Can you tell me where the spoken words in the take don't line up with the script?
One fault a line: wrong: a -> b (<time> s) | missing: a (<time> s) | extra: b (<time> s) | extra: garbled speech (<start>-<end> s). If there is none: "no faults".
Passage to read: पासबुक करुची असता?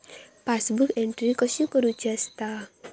extra: एंट्री कशी (1.0 s)